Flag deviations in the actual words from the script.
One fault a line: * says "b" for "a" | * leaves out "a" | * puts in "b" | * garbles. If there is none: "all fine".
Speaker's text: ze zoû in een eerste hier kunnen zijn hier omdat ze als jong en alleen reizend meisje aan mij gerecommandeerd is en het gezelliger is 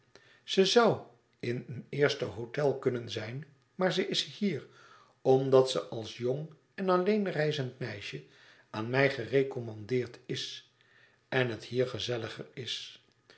* says "hôtel" for "hier"
* puts in "maar ze is"
* puts in "hier"